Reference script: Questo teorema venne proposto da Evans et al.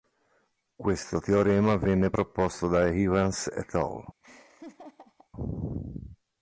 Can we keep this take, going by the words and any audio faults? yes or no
no